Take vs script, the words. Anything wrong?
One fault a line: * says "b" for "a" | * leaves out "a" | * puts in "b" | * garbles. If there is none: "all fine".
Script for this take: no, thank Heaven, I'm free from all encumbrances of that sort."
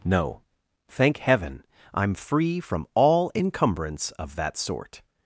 * says "encumbrance" for "encumbrances"